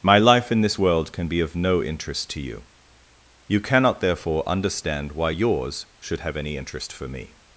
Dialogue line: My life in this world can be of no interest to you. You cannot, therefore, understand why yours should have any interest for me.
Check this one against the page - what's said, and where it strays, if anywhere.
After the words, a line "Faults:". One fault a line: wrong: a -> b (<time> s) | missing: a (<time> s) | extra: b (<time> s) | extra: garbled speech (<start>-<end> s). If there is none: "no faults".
My life in this world can be of no interest to you. You cannot, therefore, understand why yours should have any interest for me.
Faults:
no faults